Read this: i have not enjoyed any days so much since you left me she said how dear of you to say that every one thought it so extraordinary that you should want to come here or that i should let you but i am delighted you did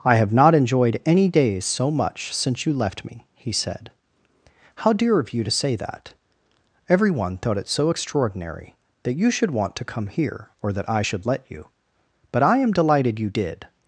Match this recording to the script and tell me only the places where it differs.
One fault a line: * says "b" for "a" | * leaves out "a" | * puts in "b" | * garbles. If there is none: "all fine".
* says "he" for "she"